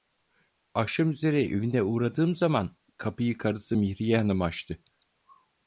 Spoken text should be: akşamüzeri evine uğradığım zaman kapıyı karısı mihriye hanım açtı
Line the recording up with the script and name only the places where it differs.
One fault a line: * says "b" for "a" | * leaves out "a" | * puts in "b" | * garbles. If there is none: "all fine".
all fine